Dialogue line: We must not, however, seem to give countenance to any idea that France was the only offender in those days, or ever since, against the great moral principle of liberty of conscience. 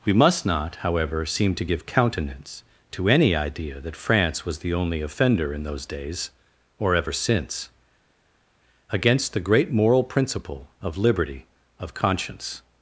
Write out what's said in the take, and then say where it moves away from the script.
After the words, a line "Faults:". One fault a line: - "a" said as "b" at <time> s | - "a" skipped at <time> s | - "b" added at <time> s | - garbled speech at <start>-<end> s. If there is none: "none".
We must not, however, seem to give countenance to any idea that France was the only offender in those days, or ever since, against the great moral principle of liberty of conscience.
Faults:
none